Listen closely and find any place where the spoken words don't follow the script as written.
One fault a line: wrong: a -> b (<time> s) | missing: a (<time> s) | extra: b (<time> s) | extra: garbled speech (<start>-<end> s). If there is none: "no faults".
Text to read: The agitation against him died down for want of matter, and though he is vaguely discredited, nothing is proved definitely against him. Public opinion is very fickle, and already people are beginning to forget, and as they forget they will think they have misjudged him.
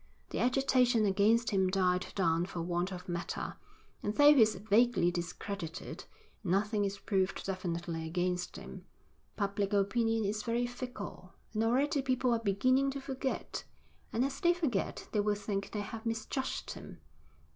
no faults